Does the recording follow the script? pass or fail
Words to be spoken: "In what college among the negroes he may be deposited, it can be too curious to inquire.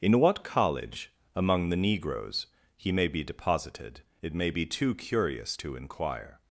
fail